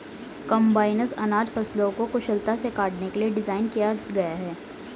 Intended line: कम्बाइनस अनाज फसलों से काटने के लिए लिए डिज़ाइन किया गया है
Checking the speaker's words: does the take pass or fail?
fail